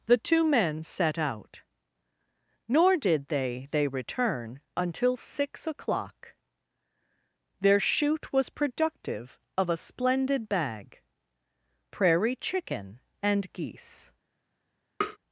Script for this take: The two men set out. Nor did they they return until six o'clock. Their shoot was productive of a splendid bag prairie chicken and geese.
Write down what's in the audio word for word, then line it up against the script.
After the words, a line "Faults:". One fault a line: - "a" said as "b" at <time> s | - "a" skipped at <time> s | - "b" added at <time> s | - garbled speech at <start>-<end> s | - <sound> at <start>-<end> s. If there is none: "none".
The two men set out. Nor did they they return until six o'clock. Their shoot was productive of a splendid bag prairie chicken and geese.
Faults:
- tap at 15.0-15.2 s